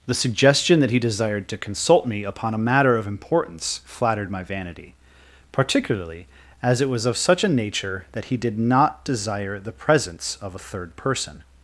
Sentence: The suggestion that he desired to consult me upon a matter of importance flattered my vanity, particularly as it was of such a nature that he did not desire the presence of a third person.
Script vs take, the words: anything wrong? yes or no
no